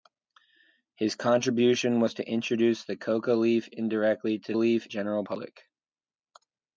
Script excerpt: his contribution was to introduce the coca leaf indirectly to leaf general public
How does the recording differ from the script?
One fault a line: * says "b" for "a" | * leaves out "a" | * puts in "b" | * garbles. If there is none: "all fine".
all fine